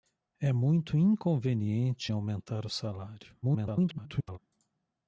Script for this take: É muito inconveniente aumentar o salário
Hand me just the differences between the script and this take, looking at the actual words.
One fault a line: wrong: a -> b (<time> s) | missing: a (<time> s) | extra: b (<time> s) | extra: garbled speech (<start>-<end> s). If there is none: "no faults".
extra: garbled speech (3.4-4.4 s)